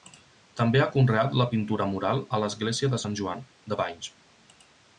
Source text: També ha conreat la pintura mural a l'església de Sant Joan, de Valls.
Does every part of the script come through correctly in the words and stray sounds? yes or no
yes